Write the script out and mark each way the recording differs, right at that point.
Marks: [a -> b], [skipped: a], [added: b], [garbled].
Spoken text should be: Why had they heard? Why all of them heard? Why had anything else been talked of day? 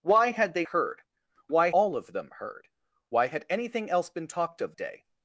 Why had they heard? Why all of them heard? Why had anything else been talked of day?